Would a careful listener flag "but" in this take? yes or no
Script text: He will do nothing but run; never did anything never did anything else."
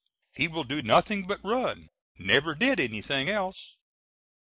no